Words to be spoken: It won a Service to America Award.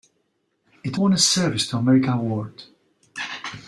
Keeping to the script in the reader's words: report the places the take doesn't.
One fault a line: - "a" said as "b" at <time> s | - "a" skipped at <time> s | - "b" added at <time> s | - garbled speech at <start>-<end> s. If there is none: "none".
none